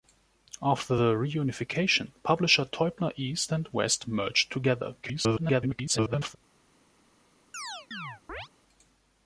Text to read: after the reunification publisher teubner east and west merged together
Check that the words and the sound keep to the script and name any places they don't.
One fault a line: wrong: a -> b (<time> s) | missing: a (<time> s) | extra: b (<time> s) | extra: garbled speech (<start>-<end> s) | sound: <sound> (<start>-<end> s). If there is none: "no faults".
extra: garbled speech (5.0-6.4 s)
sound: chirp (7.5-8.5 s)